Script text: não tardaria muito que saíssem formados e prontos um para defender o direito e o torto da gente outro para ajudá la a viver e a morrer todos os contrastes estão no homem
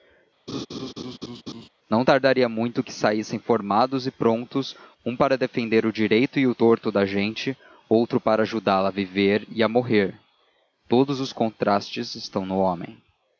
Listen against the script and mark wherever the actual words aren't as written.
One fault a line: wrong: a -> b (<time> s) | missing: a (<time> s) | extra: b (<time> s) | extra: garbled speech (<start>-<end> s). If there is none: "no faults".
no faults